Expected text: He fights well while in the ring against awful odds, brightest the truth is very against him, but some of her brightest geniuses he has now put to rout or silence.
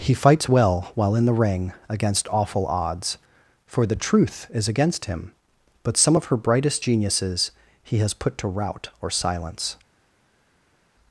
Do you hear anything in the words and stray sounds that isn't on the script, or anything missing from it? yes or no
yes